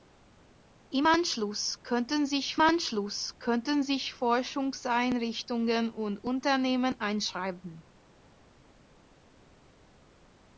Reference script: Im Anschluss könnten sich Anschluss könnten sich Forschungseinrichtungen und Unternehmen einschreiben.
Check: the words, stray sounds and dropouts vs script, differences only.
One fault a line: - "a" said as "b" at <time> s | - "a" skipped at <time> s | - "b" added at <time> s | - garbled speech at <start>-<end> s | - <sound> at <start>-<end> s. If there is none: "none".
none